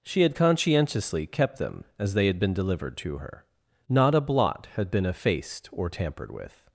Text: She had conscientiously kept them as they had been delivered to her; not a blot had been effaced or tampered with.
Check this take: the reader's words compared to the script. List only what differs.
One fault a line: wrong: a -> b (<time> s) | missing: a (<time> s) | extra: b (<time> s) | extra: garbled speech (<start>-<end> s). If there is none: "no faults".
no faults